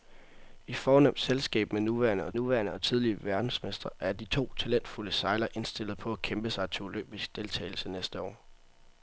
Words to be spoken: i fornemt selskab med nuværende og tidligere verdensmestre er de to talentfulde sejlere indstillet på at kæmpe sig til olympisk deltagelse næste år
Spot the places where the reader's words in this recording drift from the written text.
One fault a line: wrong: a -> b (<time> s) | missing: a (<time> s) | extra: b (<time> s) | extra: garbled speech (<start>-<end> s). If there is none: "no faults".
extra: nuværende og (2.3 s)